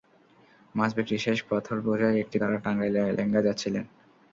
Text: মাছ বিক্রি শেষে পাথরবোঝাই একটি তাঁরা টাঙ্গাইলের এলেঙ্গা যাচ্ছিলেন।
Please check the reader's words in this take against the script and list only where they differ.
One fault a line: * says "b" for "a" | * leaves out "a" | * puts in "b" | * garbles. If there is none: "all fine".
all fine